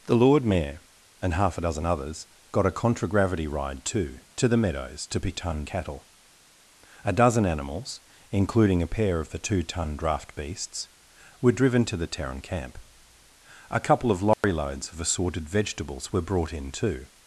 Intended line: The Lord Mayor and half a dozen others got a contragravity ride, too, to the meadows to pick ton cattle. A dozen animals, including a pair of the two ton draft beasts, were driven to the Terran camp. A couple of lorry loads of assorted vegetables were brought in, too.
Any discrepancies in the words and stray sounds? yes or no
yes